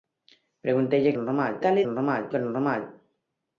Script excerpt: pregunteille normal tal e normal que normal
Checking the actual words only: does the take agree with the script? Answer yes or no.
yes